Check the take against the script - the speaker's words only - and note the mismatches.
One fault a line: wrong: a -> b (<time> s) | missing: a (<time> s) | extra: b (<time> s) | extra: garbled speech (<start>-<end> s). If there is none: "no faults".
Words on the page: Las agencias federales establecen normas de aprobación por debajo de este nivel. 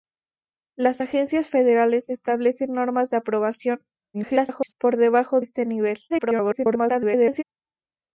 extra: garbled speech (4.1-4.7 s)
missing: de (5.4 s)
extra: garbled speech (6.1-7.4 s)